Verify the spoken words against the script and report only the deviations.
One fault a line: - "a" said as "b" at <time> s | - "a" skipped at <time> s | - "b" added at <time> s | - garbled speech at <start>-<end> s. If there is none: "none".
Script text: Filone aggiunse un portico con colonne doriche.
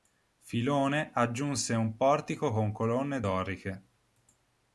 none